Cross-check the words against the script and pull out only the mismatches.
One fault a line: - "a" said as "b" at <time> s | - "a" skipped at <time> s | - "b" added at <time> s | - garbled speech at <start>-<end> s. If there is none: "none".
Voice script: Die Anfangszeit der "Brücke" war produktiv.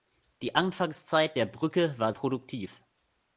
none